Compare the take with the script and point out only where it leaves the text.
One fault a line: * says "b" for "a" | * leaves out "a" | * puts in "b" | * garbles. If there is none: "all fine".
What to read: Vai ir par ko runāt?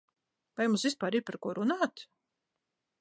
* puts in "mums vispār"